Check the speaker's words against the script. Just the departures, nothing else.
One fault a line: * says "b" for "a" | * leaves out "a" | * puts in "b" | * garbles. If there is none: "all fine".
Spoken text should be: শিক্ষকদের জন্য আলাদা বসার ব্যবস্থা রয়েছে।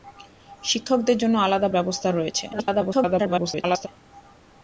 * leaves out "বসার"
* garbles